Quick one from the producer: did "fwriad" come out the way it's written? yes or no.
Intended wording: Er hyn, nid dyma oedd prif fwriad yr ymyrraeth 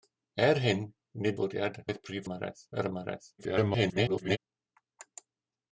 no